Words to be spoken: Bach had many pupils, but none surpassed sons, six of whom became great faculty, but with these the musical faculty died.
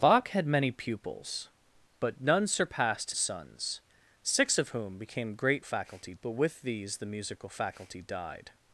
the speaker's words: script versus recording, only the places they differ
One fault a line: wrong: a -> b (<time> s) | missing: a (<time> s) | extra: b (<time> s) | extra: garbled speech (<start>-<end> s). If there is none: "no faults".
no faults